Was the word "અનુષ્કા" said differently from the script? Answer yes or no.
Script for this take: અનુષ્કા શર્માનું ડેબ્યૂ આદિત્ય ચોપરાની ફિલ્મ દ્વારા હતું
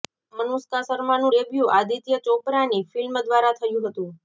no